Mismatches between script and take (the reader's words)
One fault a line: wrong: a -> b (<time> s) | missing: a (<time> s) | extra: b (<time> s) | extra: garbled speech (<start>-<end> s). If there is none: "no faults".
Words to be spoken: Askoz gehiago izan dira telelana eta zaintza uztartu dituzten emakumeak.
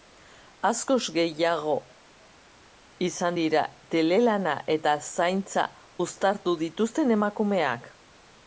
no faults